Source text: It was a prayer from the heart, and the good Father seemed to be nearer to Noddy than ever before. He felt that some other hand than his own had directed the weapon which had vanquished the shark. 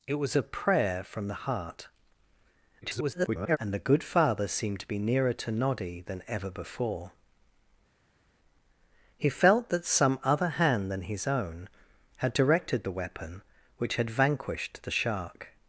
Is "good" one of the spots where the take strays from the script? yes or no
no